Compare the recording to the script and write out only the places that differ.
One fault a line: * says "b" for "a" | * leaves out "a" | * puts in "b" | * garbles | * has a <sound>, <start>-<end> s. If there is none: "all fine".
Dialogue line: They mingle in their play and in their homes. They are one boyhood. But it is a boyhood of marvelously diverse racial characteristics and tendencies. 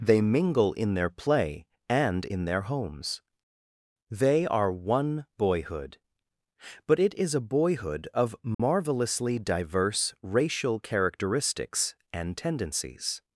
* has a dropout, 8.5-8.6 s